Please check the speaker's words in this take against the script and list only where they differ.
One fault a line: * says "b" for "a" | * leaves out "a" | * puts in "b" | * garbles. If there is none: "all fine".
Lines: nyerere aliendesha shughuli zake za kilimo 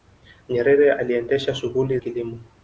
* leaves out "zake za"